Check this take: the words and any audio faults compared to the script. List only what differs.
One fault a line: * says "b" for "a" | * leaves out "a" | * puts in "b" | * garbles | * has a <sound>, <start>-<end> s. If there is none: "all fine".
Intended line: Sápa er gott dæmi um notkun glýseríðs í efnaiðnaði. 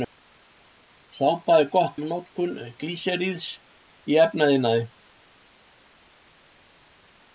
* leaves out "dæmi"